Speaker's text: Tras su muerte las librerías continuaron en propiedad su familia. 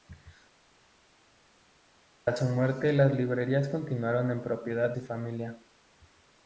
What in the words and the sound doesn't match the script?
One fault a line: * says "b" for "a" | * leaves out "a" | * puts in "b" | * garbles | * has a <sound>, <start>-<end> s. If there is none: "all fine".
all fine